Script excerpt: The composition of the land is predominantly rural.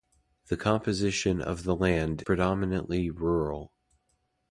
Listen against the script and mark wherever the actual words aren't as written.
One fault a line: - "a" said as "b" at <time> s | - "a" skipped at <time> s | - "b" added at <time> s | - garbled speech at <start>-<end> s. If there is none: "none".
- "is" skipped at 2.2 s